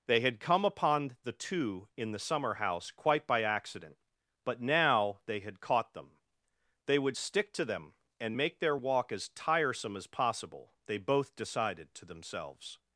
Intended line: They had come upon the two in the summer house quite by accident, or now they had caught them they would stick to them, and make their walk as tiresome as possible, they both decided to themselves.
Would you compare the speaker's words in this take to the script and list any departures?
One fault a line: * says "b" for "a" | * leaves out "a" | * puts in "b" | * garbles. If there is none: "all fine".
* says "but" for "or"